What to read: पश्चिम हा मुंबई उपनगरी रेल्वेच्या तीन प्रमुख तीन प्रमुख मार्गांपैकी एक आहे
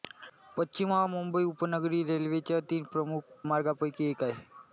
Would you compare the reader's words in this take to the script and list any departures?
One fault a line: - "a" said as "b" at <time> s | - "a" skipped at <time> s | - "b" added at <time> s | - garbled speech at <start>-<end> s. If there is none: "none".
- "तीन प्रमुख" skipped at 3.5 s